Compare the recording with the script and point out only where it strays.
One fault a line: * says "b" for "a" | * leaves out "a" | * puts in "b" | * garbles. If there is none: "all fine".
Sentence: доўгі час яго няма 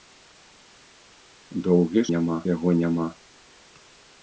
* says "няма" for "час"